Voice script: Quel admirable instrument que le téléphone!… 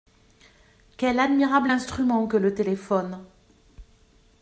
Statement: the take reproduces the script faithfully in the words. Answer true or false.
true